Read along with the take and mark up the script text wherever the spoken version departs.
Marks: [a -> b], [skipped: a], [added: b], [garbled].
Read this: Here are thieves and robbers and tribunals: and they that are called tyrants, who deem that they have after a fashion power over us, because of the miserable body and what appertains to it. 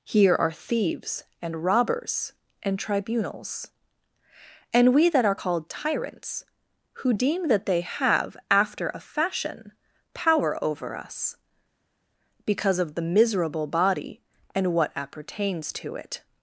Here are thieves and robbers and tribunals: and [they -> we] that are called tyrants, who deem that they have after a fashion power over us, because of the miserable body and what appertains to it.